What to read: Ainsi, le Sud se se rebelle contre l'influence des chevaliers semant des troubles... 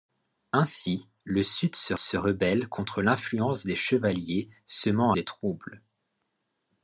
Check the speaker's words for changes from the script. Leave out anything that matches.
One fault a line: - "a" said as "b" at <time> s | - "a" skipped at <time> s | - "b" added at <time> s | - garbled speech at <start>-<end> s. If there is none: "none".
none